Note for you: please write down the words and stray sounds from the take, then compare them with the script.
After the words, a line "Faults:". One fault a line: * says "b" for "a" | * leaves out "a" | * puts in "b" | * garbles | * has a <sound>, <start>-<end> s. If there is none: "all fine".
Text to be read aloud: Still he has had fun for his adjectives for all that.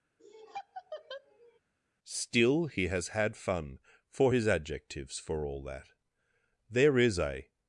Still he has had fun for his adjectives for all that. There is a
Faults:
* has a laugh, 0.2-1.6 s
* puts in "There is a"